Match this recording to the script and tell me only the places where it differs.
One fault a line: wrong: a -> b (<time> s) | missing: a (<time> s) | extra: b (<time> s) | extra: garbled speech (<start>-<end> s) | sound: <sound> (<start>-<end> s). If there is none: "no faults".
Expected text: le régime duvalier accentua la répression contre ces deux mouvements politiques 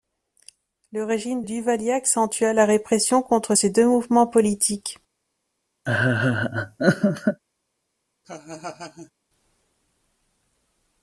sound: laugh (5.9-7.4 s)
sound: laugh (8.2-9.1 s)